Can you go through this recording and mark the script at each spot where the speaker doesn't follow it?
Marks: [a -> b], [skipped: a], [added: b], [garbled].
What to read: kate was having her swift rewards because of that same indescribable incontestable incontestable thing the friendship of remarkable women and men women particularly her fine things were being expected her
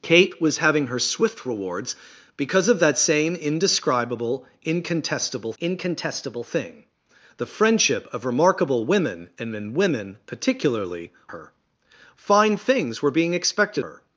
kate was having her swift rewards because of that same indescribable incontestable incontestable thing the friendship of remarkable women and men women particularly her fine things were being expected her